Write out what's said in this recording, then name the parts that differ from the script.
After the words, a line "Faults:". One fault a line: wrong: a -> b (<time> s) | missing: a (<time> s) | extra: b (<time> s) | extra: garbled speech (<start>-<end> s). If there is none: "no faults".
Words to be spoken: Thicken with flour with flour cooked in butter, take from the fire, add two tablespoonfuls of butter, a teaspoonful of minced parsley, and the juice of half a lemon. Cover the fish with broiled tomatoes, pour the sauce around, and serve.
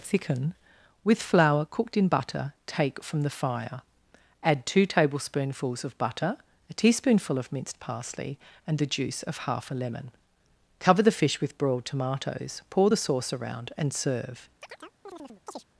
Thicken with flour cooked in butter, take from the fire, add two tablespoonfuls of butter, a teaspoonful of minced parsley, and the juice of half a lemon. Cover the fish with broiled tomatoes, pour the sauce around, and serve.
Faults:
missing: with flour (1.6 s)